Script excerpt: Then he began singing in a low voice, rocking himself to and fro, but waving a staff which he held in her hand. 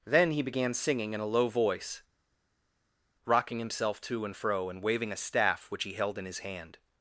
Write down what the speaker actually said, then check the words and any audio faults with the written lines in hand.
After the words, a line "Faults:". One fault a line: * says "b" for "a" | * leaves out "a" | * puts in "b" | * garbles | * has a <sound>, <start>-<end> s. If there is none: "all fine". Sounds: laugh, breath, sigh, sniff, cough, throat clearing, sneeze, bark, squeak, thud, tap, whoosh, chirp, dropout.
Then he began singing in a low voice, rocking himself to and fro, and waving a staff which he held in his hand.
Faults:
* says "and" for "but"
* says "his" for "her"